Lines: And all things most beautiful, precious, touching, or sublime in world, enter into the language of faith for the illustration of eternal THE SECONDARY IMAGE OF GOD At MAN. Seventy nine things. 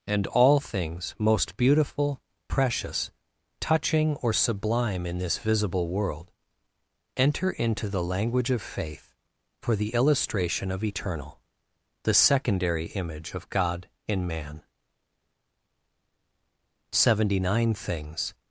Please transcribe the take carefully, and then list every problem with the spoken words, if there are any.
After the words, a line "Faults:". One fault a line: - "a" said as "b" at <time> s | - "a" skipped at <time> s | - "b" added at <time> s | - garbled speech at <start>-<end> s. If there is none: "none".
And all things most beautiful, precious, touching, or sublime in this visible world, enter into the language of faith for the illustration of eternal THE SECONDARY IMAGE OF GOD IN MAN. Seventy nine things.
Faults:
- "this visible" added at 5.2 s
- "At" said as "IN" at 14.1 s